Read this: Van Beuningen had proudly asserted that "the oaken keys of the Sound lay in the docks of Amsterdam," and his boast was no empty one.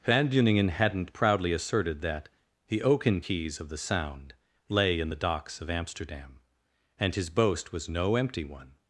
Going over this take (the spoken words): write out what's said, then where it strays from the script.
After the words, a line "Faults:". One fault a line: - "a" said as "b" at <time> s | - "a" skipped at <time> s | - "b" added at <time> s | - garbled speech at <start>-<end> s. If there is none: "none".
Van Beuningen hadn't proudly asserted that "the oaken keys of the Sound lay in the docks of Amsterdam," and his boast was no empty one.
Faults:
- "had" said as "hadn't" at 0.7 s